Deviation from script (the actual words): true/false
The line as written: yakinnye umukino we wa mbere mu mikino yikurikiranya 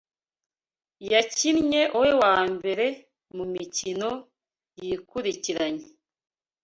true